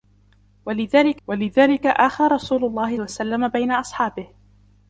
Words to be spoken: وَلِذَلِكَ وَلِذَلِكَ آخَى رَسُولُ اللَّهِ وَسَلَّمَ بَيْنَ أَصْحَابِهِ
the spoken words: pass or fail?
pass